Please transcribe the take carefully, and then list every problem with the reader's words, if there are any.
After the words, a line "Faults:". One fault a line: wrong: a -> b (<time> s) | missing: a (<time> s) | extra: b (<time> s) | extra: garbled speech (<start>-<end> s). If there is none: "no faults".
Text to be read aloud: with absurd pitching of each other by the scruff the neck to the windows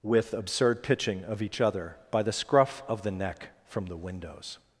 with absurd pitching of each other by the scruff of the neck from the windows
Faults:
extra: of (2.9 s)
wrong: to -> from (3.6 s)